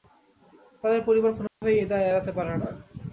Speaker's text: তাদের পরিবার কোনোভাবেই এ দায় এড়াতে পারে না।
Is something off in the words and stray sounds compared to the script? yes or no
yes